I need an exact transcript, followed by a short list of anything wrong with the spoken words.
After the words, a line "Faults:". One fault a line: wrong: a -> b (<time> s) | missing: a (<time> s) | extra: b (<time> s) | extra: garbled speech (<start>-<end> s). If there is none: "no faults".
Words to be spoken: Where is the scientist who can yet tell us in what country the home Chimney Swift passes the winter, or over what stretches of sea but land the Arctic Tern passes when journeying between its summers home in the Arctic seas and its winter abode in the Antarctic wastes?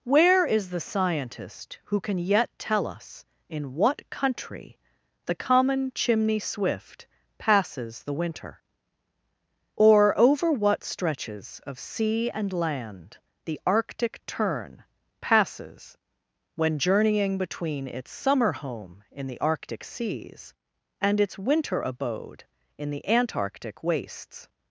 Where is the scientist who can yet tell us in what country the common Chimney Swift passes the winter, or over what stretches of sea and land the Arctic Tern passes when journeying between its summer home in the Arctic seas and its winter abode in the Antarctic wastes?
Faults:
wrong: home -> common (5.3 s)
wrong: but -> and (12.3 s)
wrong: summers -> summer (18.1 s)